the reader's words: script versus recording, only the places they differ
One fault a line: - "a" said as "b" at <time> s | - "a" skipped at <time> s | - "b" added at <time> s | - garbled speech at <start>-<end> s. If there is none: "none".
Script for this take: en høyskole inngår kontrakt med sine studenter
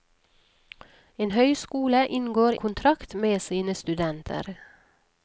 none